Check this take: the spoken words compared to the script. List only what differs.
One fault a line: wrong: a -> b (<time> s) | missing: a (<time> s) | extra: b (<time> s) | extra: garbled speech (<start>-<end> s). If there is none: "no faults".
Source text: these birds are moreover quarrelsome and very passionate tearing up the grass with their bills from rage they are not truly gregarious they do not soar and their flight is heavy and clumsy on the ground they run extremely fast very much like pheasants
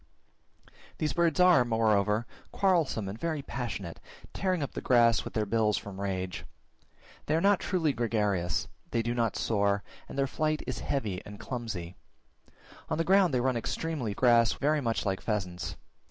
wrong: fast -> grass (14.1 s)